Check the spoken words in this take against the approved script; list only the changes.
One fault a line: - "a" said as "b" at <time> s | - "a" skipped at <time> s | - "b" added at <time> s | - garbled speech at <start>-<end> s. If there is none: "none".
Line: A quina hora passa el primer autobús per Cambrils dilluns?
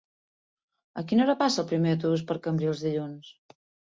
none